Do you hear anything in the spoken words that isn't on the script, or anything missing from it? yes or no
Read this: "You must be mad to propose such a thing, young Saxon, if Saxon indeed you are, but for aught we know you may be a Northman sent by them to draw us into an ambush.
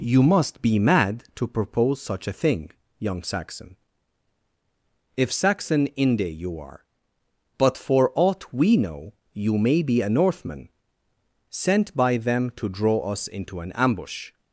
yes